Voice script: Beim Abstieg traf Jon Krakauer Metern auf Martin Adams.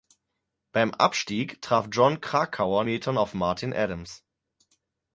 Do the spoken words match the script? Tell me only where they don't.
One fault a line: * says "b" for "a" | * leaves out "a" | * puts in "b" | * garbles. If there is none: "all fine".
all fine